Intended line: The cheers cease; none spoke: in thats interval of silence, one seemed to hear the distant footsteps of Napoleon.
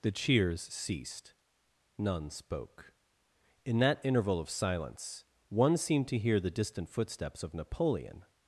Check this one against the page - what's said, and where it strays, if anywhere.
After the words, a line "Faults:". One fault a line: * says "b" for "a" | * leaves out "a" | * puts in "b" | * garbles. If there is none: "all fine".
The cheers ceased; none spoke: in that interval of silence, one seemed to hear the distant footsteps of Napoleon.
Faults:
* says "ceased" for "cease"
* says "that" for "thats"